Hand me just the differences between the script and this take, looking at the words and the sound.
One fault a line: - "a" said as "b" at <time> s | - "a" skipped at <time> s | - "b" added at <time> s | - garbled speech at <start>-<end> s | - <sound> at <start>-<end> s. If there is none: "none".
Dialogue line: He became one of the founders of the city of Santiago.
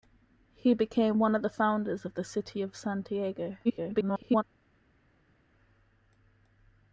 - garbled speech at 3.6-4.4 s